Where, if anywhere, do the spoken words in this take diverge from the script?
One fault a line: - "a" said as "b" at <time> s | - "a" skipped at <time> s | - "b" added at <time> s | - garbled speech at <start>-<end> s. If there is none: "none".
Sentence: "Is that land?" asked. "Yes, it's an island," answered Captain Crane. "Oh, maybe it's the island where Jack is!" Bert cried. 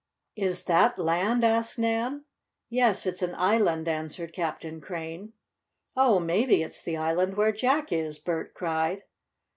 - "Nan" added at 1.8 s